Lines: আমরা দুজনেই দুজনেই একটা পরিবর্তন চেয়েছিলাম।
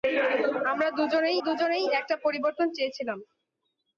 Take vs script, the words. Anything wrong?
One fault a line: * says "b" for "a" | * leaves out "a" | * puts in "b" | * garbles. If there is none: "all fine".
all fine